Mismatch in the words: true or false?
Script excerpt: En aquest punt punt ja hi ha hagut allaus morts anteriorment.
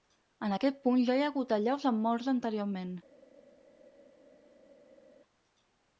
true